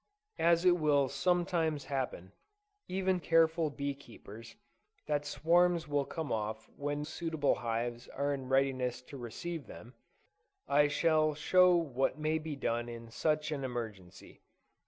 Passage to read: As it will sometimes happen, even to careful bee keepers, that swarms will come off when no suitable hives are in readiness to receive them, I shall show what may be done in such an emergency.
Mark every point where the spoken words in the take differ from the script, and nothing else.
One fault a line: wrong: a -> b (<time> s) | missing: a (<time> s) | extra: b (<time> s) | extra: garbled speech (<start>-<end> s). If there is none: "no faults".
missing: to (3.2 s)
missing: no (7.0 s)